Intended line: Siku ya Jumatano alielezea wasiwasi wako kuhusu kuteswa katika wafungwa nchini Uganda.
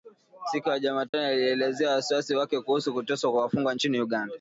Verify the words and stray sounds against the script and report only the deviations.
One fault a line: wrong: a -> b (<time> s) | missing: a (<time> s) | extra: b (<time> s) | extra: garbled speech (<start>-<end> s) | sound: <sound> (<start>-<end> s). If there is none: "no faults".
sound: dropout (1.1-1.1 s)
wrong: wako -> wake (2.4 s)
wrong: katika -> kwa (3.3 s)